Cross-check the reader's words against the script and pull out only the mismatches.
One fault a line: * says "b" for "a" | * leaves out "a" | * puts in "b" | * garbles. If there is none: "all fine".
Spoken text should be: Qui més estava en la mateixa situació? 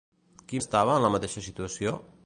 * leaves out "més"